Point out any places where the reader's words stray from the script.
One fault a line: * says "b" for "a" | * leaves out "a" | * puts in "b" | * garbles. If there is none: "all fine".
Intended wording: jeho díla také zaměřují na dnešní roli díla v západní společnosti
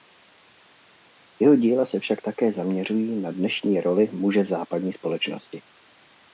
* puts in "se však"
* says "muže" for "díla"